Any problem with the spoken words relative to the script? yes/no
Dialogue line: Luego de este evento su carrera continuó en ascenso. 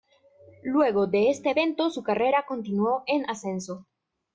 no